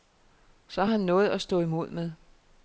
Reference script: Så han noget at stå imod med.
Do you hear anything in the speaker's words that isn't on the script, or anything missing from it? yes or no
no